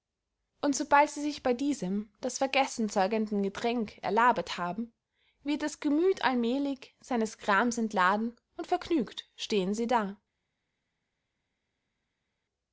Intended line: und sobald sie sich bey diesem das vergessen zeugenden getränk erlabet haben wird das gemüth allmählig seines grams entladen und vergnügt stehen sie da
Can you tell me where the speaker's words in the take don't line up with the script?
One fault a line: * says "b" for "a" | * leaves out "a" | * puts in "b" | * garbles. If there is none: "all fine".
all fine